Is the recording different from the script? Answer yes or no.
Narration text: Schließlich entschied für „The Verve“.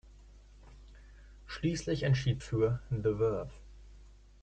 no